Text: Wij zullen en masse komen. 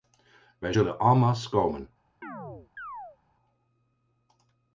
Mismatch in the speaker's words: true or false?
false